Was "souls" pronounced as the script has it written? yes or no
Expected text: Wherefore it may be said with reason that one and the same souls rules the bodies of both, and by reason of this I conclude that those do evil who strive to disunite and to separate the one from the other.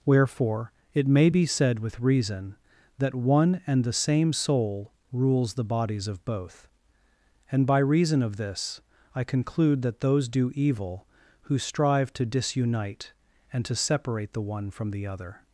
no